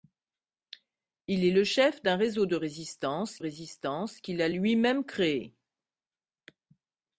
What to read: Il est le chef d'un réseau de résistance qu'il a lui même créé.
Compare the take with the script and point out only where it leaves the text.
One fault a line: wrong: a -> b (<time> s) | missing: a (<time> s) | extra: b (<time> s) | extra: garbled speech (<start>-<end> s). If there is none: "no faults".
extra: résistance (3.4 s)